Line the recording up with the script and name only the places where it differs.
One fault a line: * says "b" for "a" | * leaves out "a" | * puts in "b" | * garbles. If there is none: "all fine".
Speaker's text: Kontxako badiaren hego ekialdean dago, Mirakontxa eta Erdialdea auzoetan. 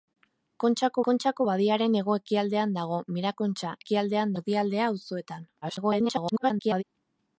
* puts in "kontxako"
* says "ekialdean" for "eta"
* garbles